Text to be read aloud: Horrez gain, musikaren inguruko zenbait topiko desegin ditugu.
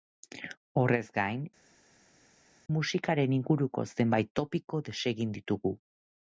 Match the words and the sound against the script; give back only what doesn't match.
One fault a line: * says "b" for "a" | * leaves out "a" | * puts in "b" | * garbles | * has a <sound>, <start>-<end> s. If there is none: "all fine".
all fine